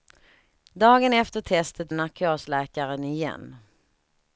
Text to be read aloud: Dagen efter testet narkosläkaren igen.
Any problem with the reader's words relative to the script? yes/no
no